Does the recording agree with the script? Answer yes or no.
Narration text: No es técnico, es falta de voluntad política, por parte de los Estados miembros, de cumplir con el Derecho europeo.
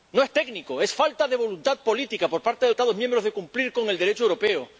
no